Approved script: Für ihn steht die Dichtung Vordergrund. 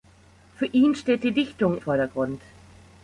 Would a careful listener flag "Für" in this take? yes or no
no